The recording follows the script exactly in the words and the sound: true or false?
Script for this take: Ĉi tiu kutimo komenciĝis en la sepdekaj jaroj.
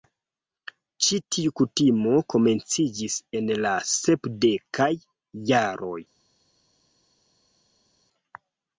true